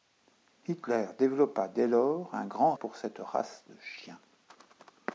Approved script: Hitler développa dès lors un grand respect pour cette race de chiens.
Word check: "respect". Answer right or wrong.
wrong